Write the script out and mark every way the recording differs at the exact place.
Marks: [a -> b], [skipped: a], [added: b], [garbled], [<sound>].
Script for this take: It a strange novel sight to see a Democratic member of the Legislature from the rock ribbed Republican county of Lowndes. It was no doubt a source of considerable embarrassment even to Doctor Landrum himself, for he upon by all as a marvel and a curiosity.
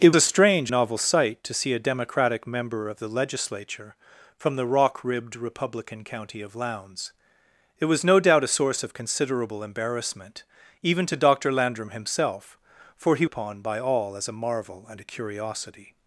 It a strange novel sight to see a Democratic member of the Legislature from the rock ribbed Republican county of Lowndes. It was no doubt a source of considerable embarrassment even to Doctor Landrum himself, for he upon by all as a marvel and a curiosity.